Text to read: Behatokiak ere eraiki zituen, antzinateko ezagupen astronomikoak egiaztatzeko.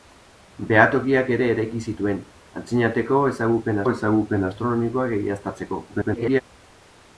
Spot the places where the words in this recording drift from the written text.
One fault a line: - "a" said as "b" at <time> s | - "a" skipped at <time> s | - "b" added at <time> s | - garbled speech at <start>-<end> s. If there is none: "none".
- "ezagupen" added at 3.9 s
- garbled speech at 5.9-6.4 s